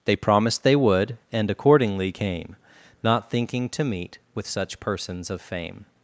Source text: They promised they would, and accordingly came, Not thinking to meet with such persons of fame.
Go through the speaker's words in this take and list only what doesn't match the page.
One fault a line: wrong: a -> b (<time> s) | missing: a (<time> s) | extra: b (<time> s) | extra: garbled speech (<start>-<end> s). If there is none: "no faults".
no faults